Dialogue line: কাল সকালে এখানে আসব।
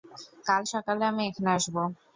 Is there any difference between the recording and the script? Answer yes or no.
yes